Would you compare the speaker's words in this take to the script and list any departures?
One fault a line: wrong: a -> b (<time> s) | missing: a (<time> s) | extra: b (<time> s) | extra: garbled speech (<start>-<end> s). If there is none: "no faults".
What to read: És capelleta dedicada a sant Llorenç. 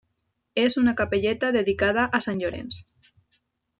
extra: una (0.8 s)